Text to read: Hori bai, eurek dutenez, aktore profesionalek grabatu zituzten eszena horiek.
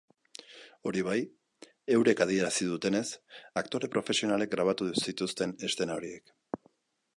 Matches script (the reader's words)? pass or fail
fail